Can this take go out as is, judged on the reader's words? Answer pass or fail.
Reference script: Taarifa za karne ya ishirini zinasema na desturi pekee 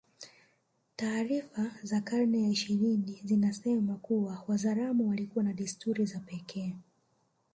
fail